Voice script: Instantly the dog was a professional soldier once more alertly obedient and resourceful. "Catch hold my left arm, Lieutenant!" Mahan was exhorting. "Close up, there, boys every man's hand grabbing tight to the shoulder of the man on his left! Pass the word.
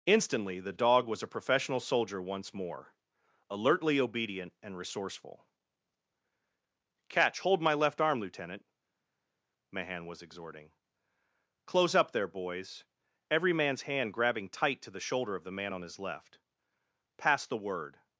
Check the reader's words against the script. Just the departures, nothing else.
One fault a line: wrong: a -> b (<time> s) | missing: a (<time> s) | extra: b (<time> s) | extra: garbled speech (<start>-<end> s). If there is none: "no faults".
no faults